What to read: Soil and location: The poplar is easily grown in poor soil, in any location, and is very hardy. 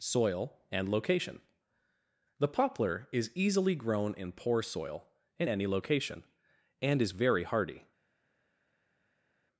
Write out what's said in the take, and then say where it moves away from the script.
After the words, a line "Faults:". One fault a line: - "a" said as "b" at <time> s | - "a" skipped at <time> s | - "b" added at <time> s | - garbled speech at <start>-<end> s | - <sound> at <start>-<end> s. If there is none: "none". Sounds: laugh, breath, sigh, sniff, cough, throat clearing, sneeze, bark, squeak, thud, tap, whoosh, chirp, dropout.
Soil and location: The poplar is easily grown in poor soil, in any location, and is very hardy.
Faults:
none